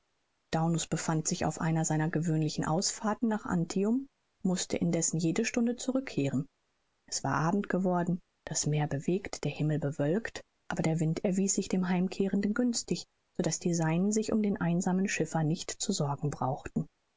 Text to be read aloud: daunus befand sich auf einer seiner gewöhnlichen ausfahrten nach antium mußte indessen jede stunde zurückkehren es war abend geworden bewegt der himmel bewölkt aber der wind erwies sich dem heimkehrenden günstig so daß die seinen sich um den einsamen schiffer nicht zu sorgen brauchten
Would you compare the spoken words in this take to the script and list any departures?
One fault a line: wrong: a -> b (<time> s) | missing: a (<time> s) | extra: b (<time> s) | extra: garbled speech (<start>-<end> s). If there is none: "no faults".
extra: das meer (8.4 s)